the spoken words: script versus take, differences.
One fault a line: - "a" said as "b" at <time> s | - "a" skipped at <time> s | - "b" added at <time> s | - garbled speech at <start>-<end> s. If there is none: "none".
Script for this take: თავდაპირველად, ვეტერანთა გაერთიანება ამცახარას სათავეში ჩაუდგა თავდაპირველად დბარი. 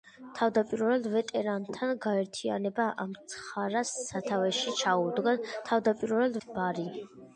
none